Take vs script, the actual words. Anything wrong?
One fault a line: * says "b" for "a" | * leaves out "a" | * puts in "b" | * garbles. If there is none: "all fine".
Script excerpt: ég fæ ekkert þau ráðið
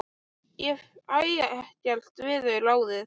* puts in "við"